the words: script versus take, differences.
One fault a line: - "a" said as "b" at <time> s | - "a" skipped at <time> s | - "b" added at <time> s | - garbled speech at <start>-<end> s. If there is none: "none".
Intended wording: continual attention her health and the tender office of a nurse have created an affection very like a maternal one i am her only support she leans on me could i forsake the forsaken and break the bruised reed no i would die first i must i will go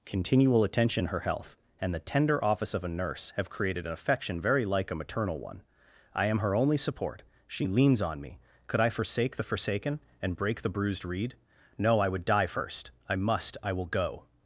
none